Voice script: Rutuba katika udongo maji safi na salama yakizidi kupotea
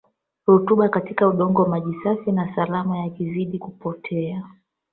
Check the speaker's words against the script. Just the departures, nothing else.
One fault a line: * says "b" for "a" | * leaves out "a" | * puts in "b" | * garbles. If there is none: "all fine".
all fine